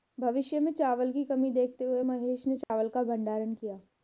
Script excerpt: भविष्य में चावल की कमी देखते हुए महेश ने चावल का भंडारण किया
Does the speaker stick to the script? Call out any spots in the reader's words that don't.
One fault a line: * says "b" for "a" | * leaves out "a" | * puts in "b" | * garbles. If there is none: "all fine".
all fine